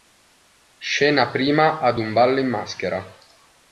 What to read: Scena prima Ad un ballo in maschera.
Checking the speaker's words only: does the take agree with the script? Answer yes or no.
yes